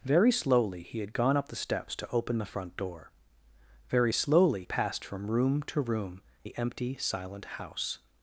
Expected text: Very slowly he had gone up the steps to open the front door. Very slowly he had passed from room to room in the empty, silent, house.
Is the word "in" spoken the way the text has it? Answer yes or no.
no